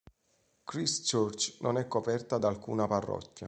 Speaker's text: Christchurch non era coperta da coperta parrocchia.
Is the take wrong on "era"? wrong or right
wrong